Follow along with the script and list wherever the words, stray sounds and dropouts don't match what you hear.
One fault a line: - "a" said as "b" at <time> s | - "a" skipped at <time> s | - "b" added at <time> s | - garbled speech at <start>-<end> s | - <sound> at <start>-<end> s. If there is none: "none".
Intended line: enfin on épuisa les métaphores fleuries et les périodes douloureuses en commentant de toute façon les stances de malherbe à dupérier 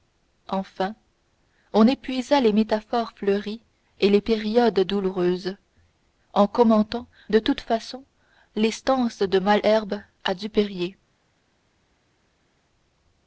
none